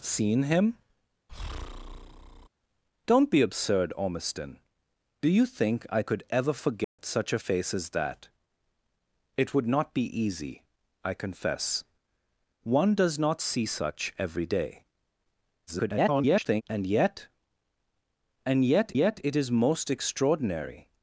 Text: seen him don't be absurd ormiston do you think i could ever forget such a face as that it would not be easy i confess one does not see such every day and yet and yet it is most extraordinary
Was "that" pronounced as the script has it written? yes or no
yes